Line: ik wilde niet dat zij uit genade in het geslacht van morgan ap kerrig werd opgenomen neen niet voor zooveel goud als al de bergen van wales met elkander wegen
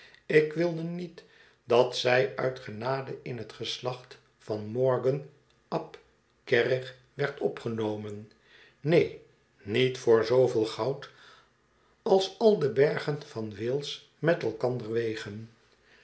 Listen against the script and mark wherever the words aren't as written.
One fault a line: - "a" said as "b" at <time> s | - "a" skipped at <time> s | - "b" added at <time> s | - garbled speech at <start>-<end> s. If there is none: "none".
none